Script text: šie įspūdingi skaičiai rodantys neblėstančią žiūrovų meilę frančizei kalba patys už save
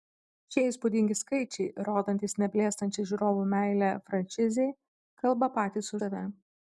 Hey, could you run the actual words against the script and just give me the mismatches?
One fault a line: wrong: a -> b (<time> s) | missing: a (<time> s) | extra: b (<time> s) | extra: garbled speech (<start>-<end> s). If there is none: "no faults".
missing: už (6.0 s)